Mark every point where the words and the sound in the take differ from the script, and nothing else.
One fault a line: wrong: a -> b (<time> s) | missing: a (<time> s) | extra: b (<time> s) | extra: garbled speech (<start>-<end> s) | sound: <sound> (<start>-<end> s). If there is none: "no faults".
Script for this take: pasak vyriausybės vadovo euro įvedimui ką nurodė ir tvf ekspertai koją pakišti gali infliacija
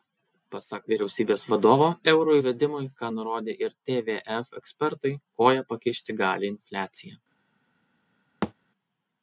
sound: thud (8.4-8.5 s)